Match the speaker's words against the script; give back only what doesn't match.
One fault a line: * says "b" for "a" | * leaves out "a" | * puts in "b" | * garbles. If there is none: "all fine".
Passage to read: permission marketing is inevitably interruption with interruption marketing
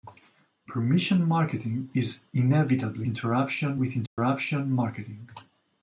all fine